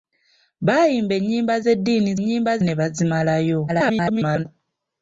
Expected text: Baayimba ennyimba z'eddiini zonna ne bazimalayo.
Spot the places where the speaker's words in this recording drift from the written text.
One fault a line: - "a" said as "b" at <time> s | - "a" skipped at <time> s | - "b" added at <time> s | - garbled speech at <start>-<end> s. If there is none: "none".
- "zonna" said as "ennyimba" at 2.2 s
- garbled speech at 3.7-4.5 s